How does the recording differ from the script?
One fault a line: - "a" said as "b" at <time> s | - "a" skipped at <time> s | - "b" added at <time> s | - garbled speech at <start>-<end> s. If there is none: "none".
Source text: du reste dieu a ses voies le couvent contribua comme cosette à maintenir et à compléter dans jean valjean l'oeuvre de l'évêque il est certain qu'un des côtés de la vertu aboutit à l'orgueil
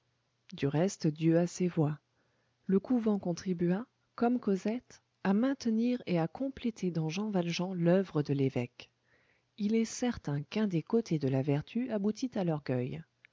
none